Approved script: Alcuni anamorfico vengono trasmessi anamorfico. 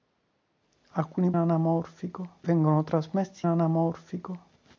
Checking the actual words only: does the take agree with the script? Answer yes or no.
yes